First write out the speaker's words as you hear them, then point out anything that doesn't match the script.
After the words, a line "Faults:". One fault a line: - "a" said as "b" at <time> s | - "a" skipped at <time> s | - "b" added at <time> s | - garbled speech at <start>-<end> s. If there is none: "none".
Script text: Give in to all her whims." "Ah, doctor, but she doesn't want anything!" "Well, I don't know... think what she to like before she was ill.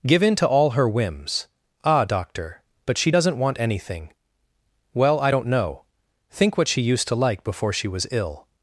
Give in to all her whims." "Ah, doctor, but she doesn't want anything!" "Well, I don't know... think what she used to like before she was ill.
Faults:
- "used" added at 6.8 s